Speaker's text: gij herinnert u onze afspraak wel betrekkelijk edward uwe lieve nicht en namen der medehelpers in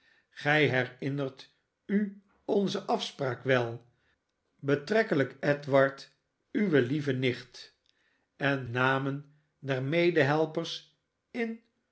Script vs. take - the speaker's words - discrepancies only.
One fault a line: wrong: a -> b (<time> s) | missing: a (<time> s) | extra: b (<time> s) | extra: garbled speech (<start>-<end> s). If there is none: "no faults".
no faults